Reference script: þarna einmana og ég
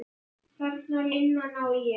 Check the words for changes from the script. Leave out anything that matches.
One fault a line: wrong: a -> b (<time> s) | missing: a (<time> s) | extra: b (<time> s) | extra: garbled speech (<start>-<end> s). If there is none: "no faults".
no faults